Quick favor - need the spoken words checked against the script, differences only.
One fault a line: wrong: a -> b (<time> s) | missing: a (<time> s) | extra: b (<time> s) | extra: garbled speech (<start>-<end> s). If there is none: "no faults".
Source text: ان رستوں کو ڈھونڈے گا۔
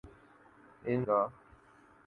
missing: رستوں کو ڈھونڈے (1.0 s)